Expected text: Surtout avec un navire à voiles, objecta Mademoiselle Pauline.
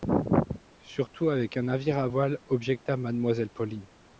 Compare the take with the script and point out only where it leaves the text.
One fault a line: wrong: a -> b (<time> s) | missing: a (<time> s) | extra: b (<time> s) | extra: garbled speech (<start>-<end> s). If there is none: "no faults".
no faults